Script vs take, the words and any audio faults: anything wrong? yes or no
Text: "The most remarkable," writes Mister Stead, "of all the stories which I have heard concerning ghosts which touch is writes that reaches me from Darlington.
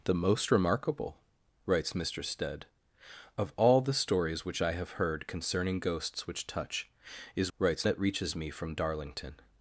no